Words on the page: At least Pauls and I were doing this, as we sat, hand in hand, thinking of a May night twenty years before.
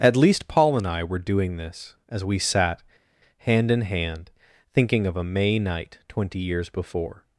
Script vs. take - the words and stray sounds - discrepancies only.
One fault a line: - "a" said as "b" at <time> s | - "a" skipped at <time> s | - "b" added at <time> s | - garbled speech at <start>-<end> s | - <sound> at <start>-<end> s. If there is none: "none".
- "Pauls" said as "Paul" at 0.5 s